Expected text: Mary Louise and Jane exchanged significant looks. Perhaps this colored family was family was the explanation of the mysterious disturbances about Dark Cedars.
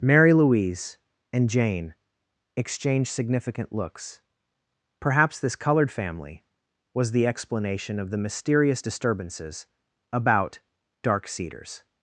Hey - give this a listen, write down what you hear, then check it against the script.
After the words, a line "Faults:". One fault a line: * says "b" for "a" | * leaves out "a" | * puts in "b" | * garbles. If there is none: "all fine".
Mary Louise and Jane exchanged significant looks. Perhaps this colored family was the explanation of the mysterious disturbances about Dark Cedars.
Faults:
* leaves out "family was"